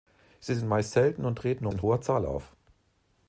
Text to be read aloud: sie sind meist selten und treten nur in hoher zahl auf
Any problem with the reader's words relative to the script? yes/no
no